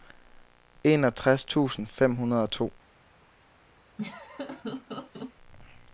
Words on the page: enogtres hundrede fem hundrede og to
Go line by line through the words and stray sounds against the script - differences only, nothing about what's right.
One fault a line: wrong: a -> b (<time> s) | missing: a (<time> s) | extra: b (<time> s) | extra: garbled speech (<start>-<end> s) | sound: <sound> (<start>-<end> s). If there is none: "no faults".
wrong: hundrede -> tusind (1.4 s)
sound: laugh (4.0-5.3 s)